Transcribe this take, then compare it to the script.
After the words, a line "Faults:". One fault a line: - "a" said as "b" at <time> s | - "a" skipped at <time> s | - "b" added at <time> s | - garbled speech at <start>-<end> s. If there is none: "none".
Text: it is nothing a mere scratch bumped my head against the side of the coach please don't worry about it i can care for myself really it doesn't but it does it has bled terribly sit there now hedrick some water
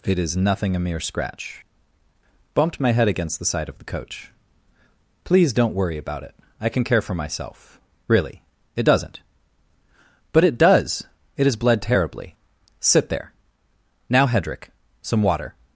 it is nothing a mere scratch bumped my head against the side of the coach please don't worry about it i can care for myself really it doesn't but it does it has bled terribly sit there now hedrick some water
Faults:
none